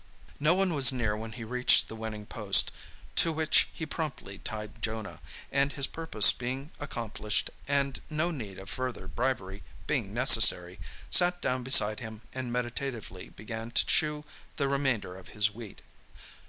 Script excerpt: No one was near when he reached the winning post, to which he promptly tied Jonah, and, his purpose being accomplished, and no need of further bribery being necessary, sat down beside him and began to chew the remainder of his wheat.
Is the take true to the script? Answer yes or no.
no